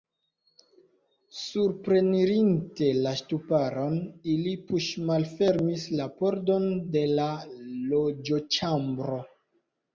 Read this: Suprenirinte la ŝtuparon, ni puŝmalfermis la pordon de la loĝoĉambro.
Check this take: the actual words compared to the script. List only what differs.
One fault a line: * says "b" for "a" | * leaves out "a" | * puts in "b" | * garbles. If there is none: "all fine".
* says "ili" for "ni"